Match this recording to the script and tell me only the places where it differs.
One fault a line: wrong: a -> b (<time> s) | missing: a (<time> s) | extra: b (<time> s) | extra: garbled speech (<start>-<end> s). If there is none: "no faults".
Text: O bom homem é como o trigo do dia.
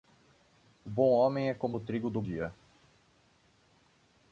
no faults